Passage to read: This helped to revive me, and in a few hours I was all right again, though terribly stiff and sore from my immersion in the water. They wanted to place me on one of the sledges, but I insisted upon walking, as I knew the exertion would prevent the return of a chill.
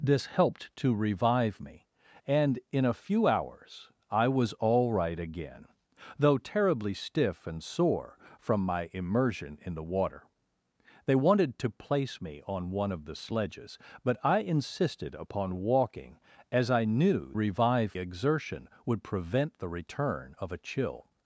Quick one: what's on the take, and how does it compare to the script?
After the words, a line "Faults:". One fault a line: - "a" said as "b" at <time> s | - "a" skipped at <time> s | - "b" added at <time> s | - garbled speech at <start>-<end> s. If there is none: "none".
This helped to revive me, and in a few hours I was all right again, though terribly stiff and sore from my immersion in the water. They wanted to place me on one of the sledges, but I insisted upon walking, as I knew revive exertion would prevent the return of a chill.
Faults:
- "the" said as "revive" at 17.3 s